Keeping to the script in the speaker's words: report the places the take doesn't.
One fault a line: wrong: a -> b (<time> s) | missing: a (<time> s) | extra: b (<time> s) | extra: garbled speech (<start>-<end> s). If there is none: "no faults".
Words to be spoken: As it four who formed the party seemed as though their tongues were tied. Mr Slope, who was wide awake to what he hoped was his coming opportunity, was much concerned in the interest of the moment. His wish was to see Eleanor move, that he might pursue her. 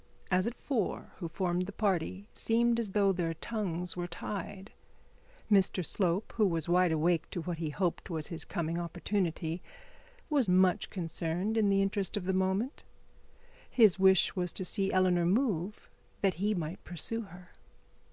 no faults